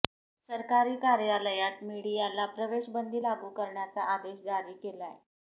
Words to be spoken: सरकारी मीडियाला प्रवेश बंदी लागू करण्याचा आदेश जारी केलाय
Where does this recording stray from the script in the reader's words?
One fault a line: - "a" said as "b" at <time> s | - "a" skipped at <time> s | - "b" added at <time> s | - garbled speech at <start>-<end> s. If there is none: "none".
- "कार्यालयात" added at 1.0 s